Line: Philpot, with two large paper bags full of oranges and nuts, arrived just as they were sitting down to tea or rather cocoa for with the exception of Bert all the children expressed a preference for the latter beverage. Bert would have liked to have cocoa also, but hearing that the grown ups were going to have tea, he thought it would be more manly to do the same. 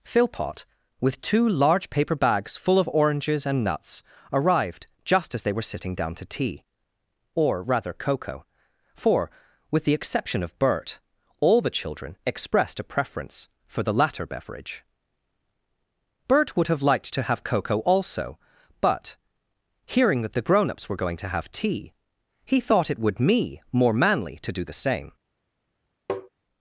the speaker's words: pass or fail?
fail